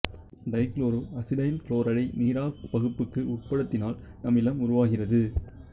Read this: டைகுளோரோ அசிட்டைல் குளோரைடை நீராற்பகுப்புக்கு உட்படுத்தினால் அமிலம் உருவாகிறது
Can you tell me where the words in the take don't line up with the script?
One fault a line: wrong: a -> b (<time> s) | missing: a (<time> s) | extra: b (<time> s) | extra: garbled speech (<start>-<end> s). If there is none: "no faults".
no faults